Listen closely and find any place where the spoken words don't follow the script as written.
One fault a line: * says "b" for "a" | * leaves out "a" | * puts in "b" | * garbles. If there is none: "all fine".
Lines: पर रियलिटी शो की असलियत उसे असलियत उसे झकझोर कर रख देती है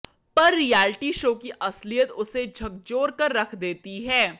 * leaves out "असलियत उसे"